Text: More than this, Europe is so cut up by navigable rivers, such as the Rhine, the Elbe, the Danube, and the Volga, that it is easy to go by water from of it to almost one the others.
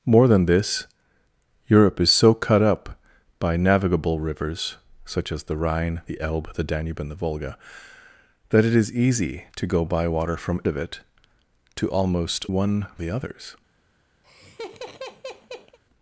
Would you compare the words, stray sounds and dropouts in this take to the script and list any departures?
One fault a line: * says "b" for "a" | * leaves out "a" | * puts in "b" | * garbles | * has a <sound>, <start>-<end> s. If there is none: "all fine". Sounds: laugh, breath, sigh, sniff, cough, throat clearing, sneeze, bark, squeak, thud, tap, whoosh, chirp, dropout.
* has a laugh, 14.2-15.8 s